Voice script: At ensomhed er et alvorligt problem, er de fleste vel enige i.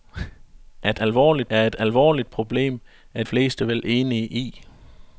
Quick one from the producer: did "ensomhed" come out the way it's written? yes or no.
no